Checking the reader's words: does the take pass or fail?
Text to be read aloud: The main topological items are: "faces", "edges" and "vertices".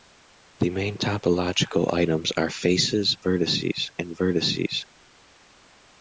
fail